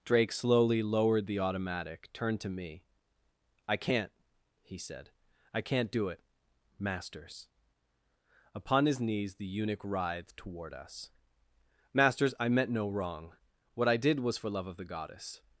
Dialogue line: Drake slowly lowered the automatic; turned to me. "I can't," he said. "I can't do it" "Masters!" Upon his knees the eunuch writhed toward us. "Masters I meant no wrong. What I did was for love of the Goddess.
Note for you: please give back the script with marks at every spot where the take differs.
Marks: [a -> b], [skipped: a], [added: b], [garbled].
Drake slowly lowered the automatic; turned to me. "I can't," he said. "I can't do it" "Masters!" Upon his knees the eunuch writhed toward us. "Masters I meant no wrong. What I did was for love of the Goddess.